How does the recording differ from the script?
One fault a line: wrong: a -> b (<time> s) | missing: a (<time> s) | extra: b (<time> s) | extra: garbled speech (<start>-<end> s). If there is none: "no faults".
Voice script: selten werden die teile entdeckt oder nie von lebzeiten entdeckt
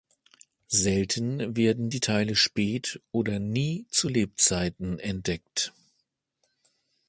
wrong: entdeckt -> spät (2.3 s)
wrong: von -> zu (3.9 s)